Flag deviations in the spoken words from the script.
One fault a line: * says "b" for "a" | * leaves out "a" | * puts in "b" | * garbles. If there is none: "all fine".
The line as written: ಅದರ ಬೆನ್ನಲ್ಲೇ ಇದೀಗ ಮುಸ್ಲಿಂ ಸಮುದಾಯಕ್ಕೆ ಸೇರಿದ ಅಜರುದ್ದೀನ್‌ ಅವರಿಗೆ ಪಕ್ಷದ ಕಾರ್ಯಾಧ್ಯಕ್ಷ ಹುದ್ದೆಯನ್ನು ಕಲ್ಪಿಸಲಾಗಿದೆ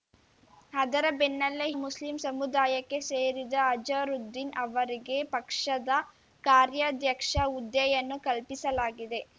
* leaves out "ಇದೀಗ"